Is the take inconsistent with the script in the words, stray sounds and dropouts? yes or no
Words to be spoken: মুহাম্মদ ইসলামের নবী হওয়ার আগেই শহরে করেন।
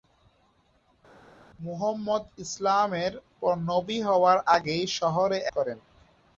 no